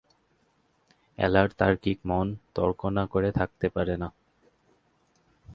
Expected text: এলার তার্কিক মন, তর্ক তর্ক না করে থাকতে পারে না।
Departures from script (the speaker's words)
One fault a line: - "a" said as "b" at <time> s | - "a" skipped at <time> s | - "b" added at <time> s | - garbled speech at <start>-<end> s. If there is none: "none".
- "তর্ক" skipped at 2.8 s